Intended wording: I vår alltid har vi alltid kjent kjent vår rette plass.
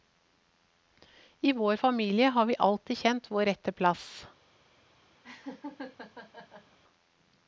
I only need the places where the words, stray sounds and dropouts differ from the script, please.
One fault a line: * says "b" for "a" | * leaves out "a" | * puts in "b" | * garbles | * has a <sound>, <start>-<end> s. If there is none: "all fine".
* says "familie" for "alltid"
* leaves out "kjent"
* has a laugh, 5.2-6.8 s